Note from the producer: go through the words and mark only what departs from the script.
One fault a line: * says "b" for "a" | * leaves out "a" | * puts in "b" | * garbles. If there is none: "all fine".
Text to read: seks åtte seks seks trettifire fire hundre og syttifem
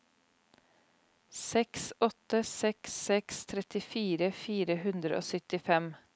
all fine